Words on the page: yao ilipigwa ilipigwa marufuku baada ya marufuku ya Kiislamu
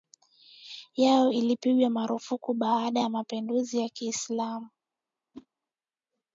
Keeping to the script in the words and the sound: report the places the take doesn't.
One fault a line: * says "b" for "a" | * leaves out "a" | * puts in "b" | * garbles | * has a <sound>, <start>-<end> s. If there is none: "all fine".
* leaves out "ilipigwa"
* says "mapinduzi" for "marufuku"
* has a whoosh, 5.3-5.5 s